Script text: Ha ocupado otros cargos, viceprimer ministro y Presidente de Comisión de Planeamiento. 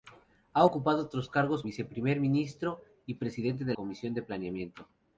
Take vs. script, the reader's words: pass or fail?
pass